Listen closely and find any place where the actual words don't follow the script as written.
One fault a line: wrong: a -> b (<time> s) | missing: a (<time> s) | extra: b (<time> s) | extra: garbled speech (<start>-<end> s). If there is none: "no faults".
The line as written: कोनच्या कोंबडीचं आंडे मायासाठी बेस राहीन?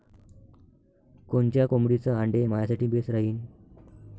no faults